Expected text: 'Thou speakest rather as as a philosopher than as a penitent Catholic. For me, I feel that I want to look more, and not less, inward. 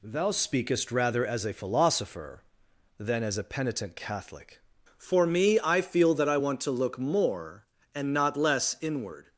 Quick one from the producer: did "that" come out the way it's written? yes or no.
yes